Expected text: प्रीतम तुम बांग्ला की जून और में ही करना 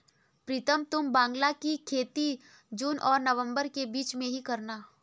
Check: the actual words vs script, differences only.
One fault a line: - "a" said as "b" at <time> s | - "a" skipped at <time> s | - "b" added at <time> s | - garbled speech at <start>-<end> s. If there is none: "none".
- "खेती" added at 1.9 s
- "नवंबर के बीच" added at 3.2 s